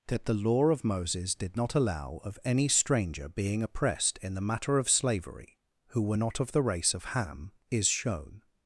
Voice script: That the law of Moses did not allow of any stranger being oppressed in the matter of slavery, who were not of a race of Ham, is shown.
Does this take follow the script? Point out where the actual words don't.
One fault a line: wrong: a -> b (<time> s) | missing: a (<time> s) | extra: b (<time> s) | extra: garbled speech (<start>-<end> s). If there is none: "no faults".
wrong: a -> the (6.5 s)